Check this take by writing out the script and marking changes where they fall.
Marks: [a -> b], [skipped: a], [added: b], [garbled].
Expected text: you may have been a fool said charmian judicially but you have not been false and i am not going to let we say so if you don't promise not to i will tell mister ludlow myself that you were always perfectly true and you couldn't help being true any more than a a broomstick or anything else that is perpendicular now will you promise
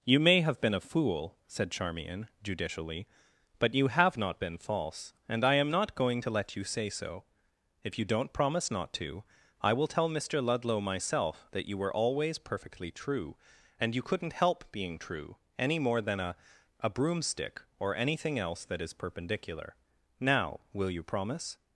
you may have been a fool said charmian judicially but you have not been false and i am not going to let [we -> you] say so if you don't promise not to i will tell mister ludlow myself that you were always perfectly true and you couldn't help being true any more than a a broomstick or anything else that is perpendicular now will you promise